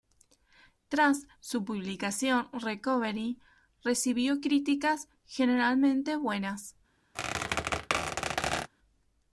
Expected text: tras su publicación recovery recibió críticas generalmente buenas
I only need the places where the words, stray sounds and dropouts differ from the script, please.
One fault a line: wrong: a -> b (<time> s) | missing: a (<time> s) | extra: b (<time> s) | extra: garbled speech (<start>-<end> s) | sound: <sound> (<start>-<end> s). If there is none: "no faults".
sound: squeak (7.1-8.7 s)